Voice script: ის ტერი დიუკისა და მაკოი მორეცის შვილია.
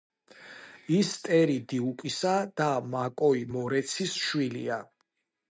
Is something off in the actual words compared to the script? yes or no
no